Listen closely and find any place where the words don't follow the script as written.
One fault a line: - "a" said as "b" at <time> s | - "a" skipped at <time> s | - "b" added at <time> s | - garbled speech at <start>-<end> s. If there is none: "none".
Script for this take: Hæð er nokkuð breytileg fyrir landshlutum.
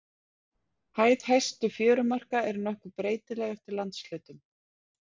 - "hæstu fjörumarka" added at 1.3 s
- "fyrir" said as "eftir" at 3.6 s